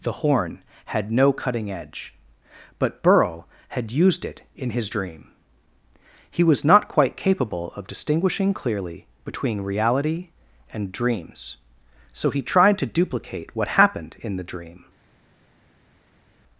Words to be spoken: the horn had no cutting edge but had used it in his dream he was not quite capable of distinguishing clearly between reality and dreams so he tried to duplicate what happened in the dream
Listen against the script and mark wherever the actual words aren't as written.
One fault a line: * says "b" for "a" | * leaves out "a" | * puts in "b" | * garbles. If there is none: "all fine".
* puts in "burl"